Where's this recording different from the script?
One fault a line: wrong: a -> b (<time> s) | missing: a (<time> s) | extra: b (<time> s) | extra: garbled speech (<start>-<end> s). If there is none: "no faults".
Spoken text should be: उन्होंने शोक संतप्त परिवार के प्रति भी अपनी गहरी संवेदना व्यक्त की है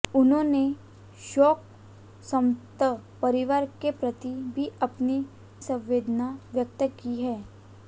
missing: गहरी (5.2 s)